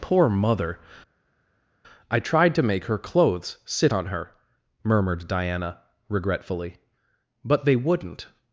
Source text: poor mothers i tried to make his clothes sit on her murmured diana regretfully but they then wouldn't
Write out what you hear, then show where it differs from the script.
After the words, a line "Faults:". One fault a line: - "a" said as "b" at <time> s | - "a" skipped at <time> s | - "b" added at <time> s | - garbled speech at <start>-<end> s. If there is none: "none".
poor mother i tried to make her clothes sit on her murmured diana regretfully but they wouldn't
Faults:
- "mothers" said as "mother" at 0.3 s
- "his" said as "her" at 2.9 s
- "then" skipped at 7.7 s